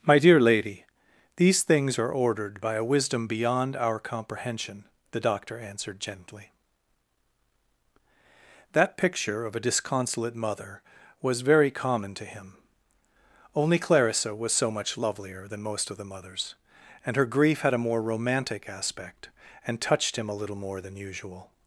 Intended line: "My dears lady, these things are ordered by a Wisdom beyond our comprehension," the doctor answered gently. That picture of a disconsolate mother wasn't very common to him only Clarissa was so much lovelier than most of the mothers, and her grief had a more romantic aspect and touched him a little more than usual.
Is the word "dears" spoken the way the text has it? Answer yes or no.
no